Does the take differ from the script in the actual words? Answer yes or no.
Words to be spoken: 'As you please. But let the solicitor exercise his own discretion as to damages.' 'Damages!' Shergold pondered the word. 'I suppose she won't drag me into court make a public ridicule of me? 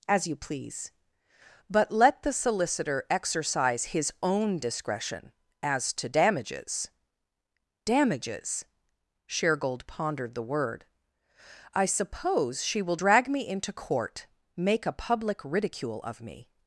yes